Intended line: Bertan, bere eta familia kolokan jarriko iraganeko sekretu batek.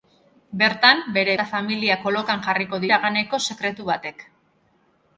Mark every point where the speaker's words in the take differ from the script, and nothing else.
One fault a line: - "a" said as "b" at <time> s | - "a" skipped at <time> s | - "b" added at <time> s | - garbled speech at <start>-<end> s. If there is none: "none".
none